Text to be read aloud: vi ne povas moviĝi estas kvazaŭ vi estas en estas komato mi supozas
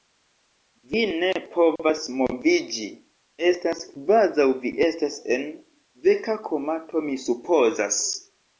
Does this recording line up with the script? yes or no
no